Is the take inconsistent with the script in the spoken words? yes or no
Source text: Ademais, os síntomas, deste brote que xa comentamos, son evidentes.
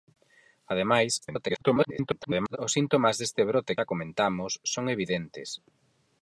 yes